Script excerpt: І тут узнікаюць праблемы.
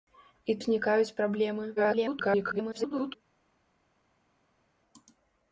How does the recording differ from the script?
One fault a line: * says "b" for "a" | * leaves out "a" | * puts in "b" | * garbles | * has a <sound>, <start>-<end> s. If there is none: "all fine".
* leaves out "тут"
* garbles